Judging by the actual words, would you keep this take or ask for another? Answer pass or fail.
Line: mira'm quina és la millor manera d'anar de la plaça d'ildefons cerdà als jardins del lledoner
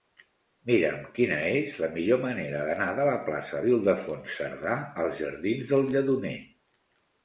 pass